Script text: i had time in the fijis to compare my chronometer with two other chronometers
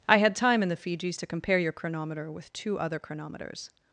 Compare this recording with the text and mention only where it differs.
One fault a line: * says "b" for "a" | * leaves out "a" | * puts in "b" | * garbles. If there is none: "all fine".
* says "your" for "my"